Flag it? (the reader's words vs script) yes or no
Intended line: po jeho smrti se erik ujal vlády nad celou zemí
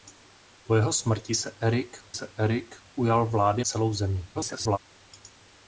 yes